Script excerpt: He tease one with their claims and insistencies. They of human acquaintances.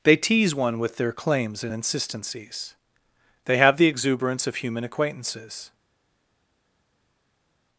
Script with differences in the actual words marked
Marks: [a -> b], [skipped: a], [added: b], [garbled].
[He -> They] tease one with their claims and insistencies. They [added: have the exuberance] of human acquaintances.